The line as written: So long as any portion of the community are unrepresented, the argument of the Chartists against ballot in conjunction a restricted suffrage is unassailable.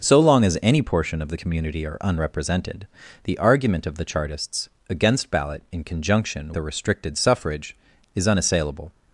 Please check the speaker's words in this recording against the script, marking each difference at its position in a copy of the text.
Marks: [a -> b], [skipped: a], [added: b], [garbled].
So long as any portion of the community are unrepresented, the argument of the Chartists against ballot in conjunction a restricted suffrage is unassailable.